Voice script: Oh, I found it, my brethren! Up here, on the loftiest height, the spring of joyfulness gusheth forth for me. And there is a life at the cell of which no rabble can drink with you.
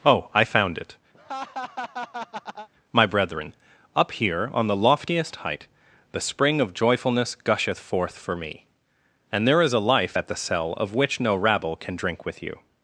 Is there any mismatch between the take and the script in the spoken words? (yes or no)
no